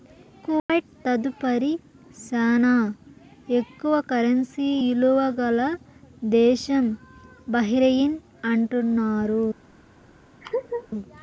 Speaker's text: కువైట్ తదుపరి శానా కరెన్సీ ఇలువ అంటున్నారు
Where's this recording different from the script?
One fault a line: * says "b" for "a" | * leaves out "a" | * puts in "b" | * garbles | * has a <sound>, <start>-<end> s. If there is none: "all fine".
* has a dropout, 0.6-0.7 s
* puts in "ఎక్కువ"
* puts in "గల దేశం బహ్రెయిన్"
* has a laugh, 10.4-10.9 s